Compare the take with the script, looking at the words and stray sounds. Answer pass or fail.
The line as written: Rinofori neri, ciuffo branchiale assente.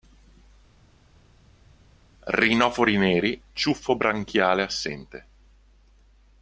pass